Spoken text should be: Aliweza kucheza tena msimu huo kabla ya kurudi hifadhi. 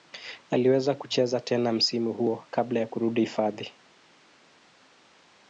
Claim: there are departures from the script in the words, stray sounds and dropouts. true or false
false